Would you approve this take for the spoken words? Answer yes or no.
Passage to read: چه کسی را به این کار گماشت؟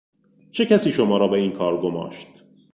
no